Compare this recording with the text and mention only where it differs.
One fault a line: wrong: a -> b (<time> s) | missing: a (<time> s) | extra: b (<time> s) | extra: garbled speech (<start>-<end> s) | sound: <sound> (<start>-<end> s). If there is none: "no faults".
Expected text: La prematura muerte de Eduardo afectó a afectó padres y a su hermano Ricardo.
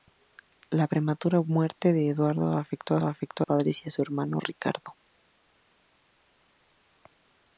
no faults